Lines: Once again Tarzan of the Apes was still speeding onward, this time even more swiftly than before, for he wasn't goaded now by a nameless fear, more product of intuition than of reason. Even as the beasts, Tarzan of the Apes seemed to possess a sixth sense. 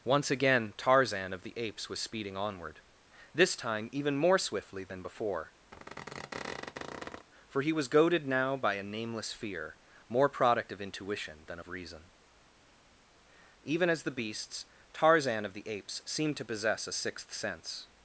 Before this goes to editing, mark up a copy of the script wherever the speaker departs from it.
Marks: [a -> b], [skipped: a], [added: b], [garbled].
Once again Tarzan of the Apes was [skipped: still] speeding onward, this time even more swiftly than before, for he [wasn't -> was] goaded now by a nameless fear, more product of intuition than of reason. Even as the beasts, Tarzan of the Apes seemed to possess a sixth sense.